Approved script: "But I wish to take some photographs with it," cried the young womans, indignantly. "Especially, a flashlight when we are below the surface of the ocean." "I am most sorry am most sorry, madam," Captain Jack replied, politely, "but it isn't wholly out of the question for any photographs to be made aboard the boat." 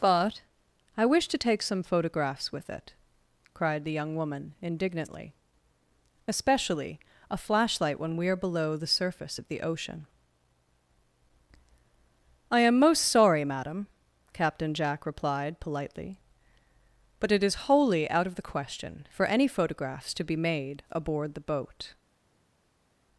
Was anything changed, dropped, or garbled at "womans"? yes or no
yes